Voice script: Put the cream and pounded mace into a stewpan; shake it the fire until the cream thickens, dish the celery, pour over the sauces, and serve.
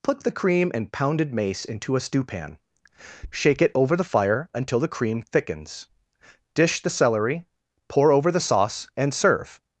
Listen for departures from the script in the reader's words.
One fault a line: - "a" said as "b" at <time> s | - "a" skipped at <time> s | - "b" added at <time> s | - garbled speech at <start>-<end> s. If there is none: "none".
- "over" added at 3.8 s
- "sauces" said as "sauce" at 8.4 s